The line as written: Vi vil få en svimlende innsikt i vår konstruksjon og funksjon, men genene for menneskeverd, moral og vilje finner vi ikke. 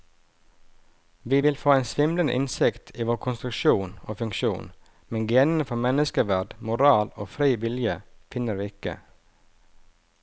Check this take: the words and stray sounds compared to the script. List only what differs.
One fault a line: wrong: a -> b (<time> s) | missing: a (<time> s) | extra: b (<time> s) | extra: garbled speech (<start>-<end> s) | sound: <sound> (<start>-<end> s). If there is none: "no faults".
extra: fri (7.3 s)